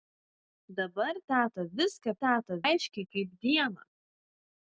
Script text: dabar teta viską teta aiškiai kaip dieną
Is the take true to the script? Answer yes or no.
yes